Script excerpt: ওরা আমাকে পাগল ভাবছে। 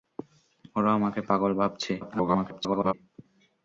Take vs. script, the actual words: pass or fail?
fail